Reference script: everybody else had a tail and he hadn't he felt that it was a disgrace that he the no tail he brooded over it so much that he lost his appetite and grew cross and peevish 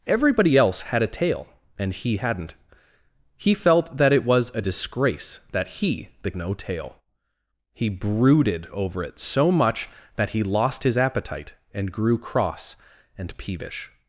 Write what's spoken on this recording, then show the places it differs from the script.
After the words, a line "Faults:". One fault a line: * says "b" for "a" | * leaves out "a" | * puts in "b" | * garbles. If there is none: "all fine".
everybody else had a tail and he hadn't he felt that it was a disgrace that he the no tail he brooded over it so much that he lost his appetite and grew cross and peevish
Faults:
all fine